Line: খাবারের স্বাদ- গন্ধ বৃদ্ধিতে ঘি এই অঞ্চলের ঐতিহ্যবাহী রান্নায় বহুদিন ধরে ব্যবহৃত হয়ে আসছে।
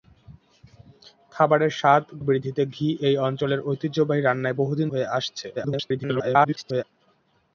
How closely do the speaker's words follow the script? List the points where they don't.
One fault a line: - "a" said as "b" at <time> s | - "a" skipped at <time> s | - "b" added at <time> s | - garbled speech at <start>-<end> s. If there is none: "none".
- "গন্ধ" skipped at 2.1 s
- "ধরে ব্যবহৃত" skipped at 4.9 s
- garbled speech at 5.6-6.8 s